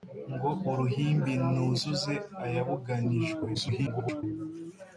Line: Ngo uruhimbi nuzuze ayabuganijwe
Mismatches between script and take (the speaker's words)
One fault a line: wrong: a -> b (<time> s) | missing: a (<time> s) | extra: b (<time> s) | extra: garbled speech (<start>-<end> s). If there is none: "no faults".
extra: garbled speech (3.5-4.2 s)